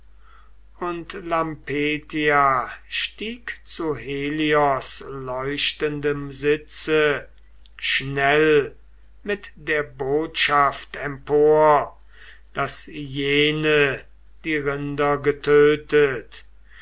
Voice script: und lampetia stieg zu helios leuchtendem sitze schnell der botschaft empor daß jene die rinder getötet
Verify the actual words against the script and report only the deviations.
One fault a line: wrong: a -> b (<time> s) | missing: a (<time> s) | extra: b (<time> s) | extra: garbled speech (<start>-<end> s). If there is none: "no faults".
extra: mit (9.2 s)